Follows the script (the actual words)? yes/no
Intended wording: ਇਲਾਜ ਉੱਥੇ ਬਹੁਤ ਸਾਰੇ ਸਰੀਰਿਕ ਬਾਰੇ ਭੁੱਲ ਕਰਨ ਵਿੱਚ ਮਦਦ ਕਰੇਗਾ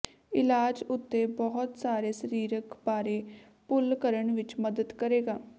yes